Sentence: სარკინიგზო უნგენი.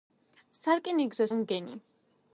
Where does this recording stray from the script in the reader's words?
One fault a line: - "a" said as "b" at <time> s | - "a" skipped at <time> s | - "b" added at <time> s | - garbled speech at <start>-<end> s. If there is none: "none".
none